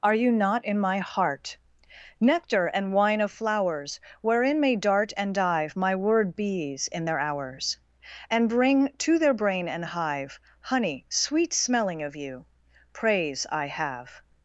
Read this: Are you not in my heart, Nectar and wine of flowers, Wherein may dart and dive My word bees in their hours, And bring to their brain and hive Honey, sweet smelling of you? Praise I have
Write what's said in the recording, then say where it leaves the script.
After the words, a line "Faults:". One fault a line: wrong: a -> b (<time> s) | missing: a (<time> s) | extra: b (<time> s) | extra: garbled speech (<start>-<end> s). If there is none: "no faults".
Are you not in my heart, Nectar and wine of flowers, Wherein may dart and dive My word bees in their hours, And bring to their brain and hive Honey, sweet smelling of you? Praise I have
Faults:
no faults